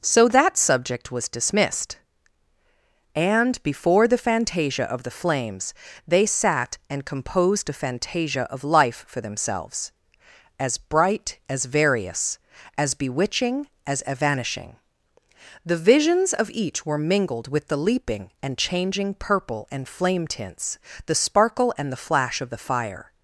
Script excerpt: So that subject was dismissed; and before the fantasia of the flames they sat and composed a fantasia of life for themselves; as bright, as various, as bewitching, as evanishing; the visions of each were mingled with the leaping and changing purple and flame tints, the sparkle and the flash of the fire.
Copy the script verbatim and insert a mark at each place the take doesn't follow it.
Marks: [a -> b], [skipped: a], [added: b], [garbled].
So that subject was dismissed; and before the fantasia of the flames they sat and composed a fantasia of life for themselves; as bright, as various, as bewitching, as evanishing; the visions of each were mingled with the leaping and changing purple and flame tints, the sparkle and the flash of the fire.